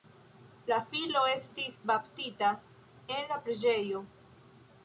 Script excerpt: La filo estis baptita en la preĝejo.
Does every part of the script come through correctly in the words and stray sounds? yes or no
yes